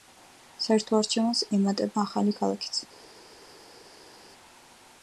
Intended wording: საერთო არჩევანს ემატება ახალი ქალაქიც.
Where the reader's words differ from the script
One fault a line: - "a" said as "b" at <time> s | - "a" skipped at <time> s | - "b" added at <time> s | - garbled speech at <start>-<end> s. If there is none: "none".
none